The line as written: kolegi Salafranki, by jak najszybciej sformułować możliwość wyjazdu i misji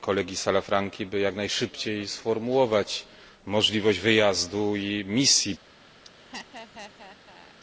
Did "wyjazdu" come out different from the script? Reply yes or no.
no